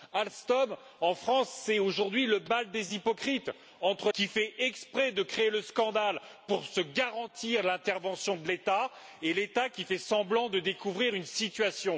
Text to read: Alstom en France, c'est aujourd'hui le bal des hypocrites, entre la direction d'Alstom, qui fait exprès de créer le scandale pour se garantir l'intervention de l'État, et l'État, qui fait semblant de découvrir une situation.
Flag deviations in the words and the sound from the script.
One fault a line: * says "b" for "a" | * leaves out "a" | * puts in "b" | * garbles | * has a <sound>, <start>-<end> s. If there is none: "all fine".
* leaves out "la direction d'Alstom"